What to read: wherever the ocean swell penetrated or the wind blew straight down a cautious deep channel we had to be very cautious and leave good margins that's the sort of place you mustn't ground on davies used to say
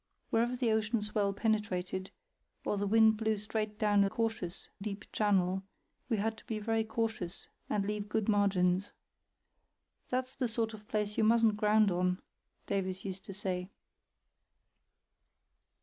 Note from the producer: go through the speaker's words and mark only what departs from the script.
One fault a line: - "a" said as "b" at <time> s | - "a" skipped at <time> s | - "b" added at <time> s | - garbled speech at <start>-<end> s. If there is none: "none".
none